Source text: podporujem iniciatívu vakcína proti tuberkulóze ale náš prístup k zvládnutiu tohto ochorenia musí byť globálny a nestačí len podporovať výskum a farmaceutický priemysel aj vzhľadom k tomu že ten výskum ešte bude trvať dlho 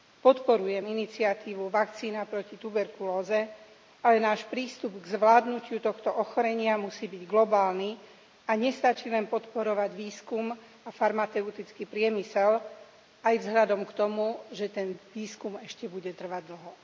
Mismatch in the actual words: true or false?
false